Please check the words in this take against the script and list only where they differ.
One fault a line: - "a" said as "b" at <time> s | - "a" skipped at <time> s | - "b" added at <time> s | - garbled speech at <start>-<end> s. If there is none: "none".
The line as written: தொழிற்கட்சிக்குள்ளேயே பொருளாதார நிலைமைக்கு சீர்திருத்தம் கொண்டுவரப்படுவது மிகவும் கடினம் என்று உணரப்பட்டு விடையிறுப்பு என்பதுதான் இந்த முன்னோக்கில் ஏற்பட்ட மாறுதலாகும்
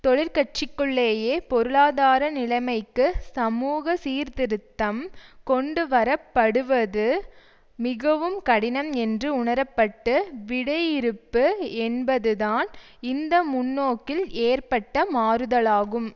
- "சமூக" added at 3.3 s